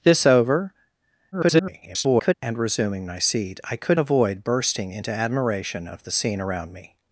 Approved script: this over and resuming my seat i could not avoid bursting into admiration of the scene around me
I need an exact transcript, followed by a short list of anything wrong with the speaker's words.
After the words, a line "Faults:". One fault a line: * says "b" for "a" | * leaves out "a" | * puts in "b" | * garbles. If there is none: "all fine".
this over [garbled] and resuming my seat i could avoid bursting into admiration of the scene around me
Faults:
* garbles
* leaves out "not"